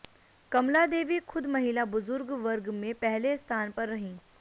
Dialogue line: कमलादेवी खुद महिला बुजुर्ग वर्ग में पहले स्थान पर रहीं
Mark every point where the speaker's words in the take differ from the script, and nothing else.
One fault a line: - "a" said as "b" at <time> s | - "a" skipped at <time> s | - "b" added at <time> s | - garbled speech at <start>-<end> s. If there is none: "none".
none